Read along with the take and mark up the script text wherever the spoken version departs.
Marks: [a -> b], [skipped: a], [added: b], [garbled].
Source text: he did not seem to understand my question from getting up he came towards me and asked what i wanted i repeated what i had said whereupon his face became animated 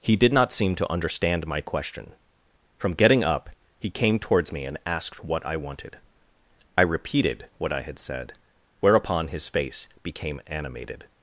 he did not seem to understand my question from getting up he came towards me and asked what i wanted i repeated what i had said whereupon his face became animated